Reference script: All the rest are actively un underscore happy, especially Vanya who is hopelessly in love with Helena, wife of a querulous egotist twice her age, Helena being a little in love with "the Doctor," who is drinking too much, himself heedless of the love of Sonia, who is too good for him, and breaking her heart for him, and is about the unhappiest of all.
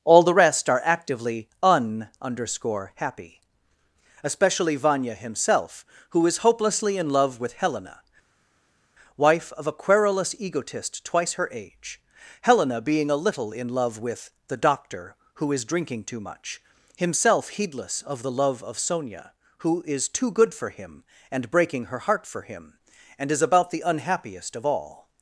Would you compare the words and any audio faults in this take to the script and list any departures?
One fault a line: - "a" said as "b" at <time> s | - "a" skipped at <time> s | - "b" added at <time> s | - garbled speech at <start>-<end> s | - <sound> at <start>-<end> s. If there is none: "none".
- "himself" added at 5.1 s